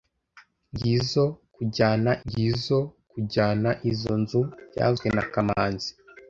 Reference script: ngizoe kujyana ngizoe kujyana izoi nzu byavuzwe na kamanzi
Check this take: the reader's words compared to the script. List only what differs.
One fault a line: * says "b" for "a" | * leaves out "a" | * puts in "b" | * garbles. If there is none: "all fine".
all fine